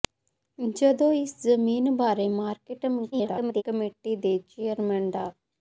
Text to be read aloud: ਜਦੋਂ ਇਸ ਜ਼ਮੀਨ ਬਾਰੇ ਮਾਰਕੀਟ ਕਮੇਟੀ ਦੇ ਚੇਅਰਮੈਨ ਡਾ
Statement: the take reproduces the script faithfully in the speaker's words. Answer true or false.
false